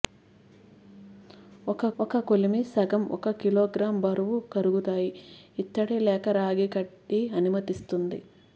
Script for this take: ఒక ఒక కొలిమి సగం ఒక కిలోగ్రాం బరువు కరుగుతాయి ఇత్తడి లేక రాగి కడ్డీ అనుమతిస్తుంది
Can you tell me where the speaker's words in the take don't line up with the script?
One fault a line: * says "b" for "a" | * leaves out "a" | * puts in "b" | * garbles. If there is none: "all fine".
all fine